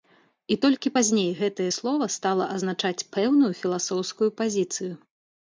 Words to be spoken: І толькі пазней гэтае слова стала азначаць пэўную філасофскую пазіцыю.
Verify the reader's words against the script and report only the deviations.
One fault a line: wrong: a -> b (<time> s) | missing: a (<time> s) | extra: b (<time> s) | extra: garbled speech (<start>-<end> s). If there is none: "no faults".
no faults